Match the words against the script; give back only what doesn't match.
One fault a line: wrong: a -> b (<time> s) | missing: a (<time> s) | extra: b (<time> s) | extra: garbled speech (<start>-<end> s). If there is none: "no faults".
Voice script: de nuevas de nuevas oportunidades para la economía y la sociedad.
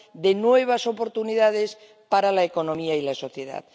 missing: de nuevas (0.9 s)